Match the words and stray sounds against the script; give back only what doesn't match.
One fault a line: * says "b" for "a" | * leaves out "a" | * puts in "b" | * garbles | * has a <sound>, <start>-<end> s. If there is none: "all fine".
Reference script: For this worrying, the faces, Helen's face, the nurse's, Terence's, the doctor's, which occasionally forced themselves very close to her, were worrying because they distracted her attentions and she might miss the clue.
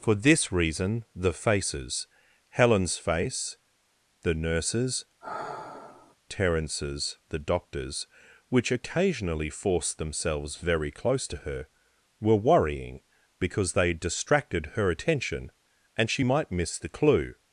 * says "reason" for "worrying"
* has a sigh, 5.2-6.2 s
* says "attention" for "attentions"